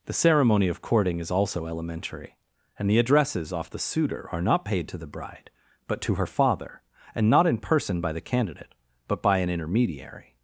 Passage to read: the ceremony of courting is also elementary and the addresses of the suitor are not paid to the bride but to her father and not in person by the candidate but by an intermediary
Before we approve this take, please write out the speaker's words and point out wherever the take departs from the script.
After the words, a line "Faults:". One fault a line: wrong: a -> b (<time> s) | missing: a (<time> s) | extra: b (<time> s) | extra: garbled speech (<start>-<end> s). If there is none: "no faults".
the ceremony of courting is also elementary and the addresses off the suitor are not paid to the bride but to her father and not in person by the candidate but by an intermediary
Faults:
wrong: of -> off (3.5 s)